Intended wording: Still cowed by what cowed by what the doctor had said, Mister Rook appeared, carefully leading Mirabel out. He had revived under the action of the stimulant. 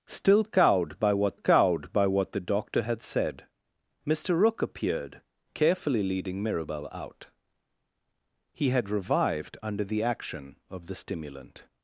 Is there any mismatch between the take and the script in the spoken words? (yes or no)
no